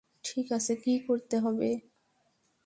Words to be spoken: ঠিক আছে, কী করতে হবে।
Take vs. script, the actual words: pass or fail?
pass